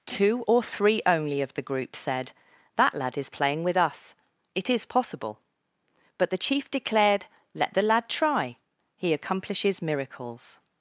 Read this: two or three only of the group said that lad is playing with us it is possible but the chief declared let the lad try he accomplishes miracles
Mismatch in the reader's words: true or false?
false